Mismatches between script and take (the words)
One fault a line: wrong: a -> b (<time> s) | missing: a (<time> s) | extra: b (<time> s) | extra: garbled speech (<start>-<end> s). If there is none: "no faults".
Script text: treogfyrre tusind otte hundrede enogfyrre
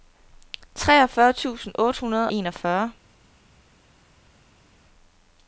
no faults